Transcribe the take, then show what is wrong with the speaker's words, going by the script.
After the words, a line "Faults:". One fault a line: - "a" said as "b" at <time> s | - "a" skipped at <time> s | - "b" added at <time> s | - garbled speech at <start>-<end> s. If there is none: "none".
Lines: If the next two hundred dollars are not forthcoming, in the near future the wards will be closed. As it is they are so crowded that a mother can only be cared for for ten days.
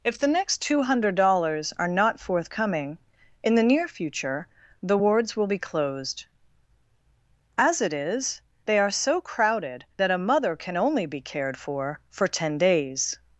If the next two hundred dollars are not forthcoming, in the near future the wards will be closed. As it is they are so crowded that a mother can only be cared for for ten days.
Faults:
none